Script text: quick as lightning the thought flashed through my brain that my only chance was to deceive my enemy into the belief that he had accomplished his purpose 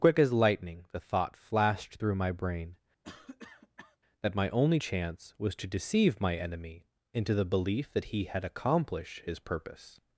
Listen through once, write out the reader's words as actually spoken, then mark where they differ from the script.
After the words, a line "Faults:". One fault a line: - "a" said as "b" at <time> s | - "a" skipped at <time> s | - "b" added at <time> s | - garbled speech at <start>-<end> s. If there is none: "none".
quick as lightning the thought flashed through my brain that my only chance was to deceive my enemy into the belief that he had accomplished his purpose
Faults:
none